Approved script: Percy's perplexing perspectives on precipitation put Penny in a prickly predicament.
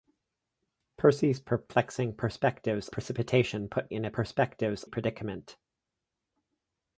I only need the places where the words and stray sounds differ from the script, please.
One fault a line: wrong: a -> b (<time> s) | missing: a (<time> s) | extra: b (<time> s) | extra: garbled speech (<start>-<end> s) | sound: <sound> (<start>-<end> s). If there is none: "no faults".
missing: on (2.9 s)
missing: Penny (3.9 s)
wrong: prickly -> perspectives (4.1 s)